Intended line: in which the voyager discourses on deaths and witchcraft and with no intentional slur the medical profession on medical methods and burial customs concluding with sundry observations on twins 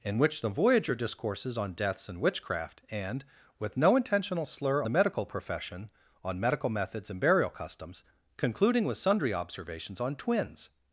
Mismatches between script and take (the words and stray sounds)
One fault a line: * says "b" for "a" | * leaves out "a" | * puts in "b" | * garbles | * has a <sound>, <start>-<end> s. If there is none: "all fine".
all fine